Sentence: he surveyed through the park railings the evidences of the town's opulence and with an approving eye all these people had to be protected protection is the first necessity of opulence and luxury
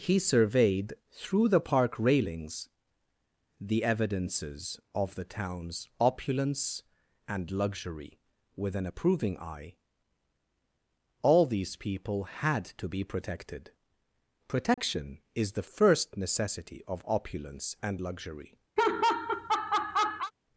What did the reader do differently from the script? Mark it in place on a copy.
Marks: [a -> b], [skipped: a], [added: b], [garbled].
he surveyed through the park railings the evidences of the town's opulence and [added: luxury] with an approving eye all these people had to be protected protection is the first necessity of opulence and luxury